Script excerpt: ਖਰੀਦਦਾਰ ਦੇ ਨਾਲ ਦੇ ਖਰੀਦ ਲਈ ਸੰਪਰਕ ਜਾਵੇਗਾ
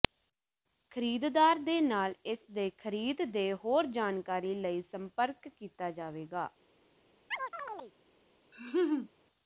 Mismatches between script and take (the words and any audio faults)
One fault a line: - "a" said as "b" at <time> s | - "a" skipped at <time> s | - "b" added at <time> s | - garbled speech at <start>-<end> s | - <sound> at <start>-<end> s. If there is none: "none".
- "ਇਸ" added at 2.2 s
- "ਦੇ ਹੋਰ ਜਾਣਕਾਰੀ" added at 3.3 s
- "ਕੀਤਾ" added at 5.5 s
- chirp at 7.3-7.9 s
- laugh at 8.5-9.1 s